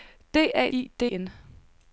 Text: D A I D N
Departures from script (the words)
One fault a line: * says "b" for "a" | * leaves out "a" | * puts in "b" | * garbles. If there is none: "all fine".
all fine